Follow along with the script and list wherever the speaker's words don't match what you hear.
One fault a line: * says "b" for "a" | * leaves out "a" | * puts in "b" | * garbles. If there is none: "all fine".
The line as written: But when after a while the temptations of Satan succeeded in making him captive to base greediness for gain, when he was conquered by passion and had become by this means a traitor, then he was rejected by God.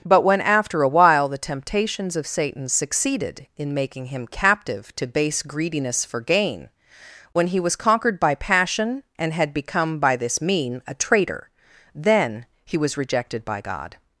* says "mean" for "means"